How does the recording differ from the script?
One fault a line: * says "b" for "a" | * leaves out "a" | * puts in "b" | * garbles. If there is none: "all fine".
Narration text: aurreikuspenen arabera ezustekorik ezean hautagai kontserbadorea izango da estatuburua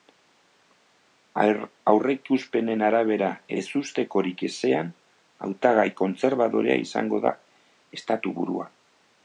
all fine